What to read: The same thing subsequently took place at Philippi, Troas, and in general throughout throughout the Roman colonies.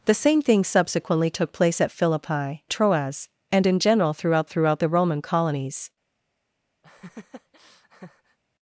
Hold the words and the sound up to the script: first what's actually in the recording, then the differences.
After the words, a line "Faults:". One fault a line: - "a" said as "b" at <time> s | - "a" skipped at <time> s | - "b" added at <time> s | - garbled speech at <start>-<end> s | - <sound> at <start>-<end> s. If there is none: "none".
The same thing subsequently took place at Philippi, Troas, and in general throughout throughout the Roman colonies.
Faults:
- laugh at 6.8-8.4 s